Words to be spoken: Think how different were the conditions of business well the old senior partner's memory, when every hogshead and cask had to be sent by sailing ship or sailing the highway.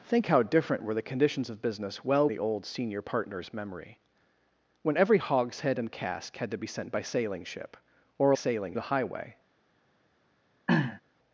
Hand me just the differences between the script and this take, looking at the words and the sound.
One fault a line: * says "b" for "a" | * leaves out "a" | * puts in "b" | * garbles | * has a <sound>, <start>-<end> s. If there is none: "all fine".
* has a throat clearing, 10.7-11.0 s